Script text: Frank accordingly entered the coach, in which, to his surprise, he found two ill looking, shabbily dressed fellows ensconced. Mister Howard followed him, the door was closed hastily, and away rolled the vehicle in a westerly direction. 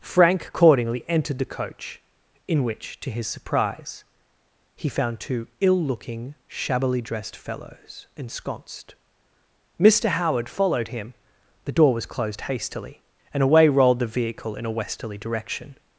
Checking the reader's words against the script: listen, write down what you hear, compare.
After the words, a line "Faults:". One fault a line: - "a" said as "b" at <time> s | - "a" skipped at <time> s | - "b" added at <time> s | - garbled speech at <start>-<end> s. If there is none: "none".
Frank accordingly entered the coach, in which, to his surprise, he found two ill looking, shabbily dressed fellows ensconced. Mister Howard followed him, the door was closed hastily, and away rolled the vehicle in a westerly direction.
Faults:
none